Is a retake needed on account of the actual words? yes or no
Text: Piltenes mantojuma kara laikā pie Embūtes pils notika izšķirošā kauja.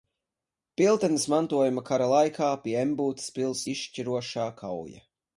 yes